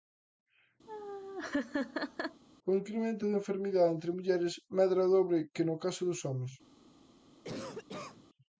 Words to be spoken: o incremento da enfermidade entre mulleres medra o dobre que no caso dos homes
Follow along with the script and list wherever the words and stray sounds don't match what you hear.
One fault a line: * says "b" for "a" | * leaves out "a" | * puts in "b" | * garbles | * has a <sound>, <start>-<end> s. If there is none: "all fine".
* has a laugh, 0.9-2.4 s
* has a cough, 7.4-8.3 s